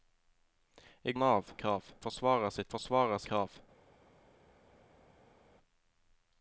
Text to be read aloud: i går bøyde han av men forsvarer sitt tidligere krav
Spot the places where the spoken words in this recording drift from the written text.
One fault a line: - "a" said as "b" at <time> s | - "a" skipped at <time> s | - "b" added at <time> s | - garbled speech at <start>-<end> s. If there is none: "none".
- "går bøyde" skipped at 1.1 s
- "men" said as "krav" at 1.6 s
- "tidligere" said as "forsvarer" at 2.7 s